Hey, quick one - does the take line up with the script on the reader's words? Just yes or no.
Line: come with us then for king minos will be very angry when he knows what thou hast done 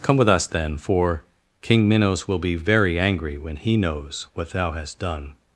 yes